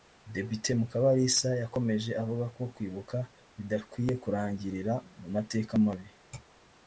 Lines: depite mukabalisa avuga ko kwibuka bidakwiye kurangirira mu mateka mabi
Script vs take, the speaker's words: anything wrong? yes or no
yes